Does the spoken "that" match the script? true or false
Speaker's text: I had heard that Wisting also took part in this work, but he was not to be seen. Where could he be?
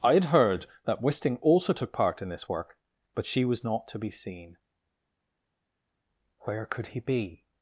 true